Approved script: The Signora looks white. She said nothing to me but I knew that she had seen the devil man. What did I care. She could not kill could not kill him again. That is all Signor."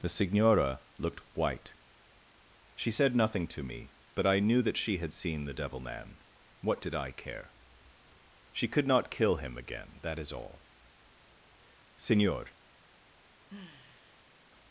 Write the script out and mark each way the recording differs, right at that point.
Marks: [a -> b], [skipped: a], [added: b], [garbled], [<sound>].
The Signora [looks -> looked] white. She said nothing to me but I knew that she had seen the devil man. What did I care. She could not kill [skipped: could not kill] him again. That is all Signor." [sigh]